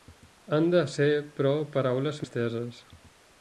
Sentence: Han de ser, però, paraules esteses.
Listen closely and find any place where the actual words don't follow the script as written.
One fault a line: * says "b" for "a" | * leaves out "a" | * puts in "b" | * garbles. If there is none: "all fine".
all fine